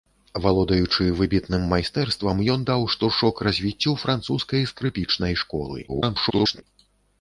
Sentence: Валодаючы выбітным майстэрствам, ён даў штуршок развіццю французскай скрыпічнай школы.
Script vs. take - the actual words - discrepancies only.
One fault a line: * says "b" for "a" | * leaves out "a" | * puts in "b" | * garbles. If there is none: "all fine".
* garbles